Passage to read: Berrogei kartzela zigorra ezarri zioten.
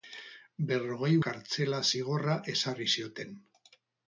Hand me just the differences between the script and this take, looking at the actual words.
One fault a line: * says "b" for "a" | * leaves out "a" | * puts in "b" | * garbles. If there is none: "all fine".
all fine